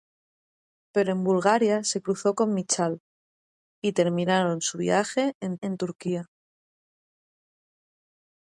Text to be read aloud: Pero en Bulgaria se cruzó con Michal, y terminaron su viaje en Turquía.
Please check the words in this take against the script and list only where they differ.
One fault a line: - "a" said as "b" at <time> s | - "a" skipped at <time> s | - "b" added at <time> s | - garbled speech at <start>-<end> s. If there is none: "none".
- "en" added at 5.6 s